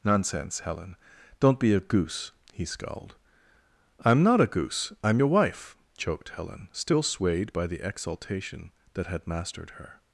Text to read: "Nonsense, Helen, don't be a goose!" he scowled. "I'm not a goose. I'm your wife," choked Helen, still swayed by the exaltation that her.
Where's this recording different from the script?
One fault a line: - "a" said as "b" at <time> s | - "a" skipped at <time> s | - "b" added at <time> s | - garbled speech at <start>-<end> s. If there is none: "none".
- "had mastered" added at 9.1 s